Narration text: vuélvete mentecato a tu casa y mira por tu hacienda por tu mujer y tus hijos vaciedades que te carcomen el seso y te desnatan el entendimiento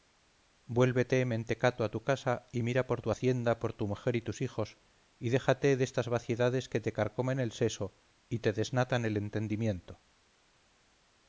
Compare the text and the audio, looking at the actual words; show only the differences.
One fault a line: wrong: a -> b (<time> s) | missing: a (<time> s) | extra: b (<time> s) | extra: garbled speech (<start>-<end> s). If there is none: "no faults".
extra: y déjate destas (5.2 s)